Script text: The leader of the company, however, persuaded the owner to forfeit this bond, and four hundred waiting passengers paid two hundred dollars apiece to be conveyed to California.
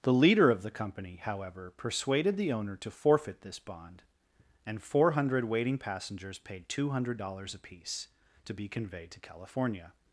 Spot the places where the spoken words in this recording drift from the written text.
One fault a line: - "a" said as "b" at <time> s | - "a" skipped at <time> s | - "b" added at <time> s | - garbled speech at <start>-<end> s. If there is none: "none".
none